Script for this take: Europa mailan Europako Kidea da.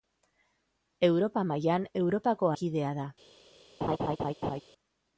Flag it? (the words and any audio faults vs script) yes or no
yes